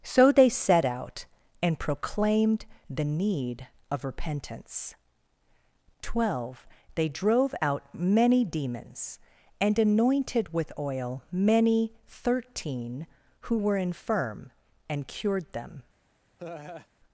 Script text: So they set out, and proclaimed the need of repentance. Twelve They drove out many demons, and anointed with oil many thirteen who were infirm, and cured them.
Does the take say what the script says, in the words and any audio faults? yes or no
no